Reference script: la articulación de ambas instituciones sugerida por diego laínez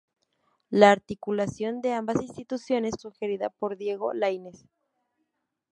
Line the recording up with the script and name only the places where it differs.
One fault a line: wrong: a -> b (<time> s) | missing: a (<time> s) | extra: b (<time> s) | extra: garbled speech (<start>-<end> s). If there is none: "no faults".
no faults